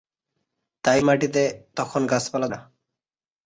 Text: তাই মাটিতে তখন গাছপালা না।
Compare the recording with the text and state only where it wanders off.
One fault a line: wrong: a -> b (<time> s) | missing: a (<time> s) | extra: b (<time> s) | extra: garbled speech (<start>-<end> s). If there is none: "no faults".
no faults